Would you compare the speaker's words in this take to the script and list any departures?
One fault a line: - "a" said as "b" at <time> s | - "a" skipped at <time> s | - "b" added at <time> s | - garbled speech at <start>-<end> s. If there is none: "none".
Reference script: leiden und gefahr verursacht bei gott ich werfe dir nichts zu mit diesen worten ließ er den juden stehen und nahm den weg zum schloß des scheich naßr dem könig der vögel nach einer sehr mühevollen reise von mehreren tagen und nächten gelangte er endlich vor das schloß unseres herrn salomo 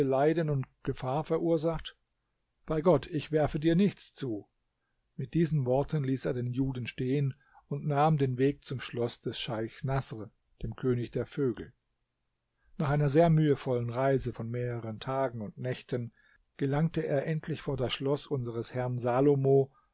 none